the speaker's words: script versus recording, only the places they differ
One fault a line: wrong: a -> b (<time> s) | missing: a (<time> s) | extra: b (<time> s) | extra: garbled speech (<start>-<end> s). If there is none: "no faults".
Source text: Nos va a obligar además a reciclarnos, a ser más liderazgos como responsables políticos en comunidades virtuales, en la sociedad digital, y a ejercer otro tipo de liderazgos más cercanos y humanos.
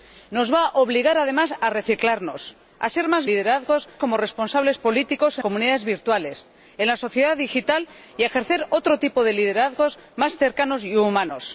no faults